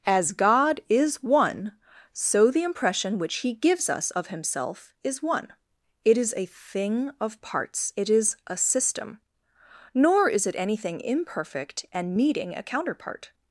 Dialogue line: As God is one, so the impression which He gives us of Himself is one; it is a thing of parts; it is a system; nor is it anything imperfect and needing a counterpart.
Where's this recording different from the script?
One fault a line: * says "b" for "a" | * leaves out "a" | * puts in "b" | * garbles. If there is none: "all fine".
all fine